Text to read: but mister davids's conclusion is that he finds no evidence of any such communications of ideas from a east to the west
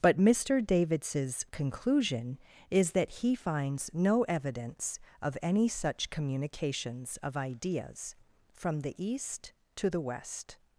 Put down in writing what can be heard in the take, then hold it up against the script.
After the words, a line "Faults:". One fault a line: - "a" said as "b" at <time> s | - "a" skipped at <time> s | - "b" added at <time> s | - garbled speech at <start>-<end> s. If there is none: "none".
but mister davids's conclusion is that he finds no evidence of any such communications of ideas from the east to the west
Faults:
- "a" said as "the" at 8.8 s